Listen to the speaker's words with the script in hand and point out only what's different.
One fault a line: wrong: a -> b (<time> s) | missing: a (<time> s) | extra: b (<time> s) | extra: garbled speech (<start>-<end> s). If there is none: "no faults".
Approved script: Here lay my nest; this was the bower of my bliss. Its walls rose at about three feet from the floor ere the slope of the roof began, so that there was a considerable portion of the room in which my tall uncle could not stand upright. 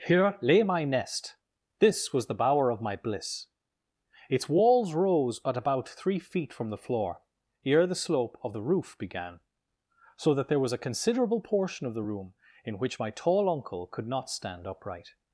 no faults